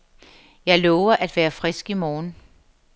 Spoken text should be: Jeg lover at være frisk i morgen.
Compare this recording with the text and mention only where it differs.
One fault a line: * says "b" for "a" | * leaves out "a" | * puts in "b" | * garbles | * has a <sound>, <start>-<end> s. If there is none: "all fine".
all fine